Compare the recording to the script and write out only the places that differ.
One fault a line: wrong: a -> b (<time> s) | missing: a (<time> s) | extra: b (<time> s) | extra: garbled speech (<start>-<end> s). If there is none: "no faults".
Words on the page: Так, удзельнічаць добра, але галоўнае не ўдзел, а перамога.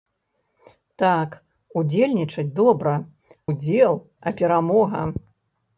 missing: але галоўнае не (2.9 s)